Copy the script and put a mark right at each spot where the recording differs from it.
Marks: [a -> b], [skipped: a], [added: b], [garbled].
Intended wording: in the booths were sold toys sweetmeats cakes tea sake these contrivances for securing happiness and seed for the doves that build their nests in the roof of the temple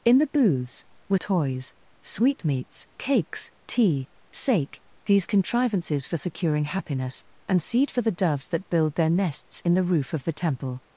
in the booths were [skipped: sold] toys sweetmeats cakes tea sake these contrivances for securing happiness and seed for the doves that build their nests in the roof of the temple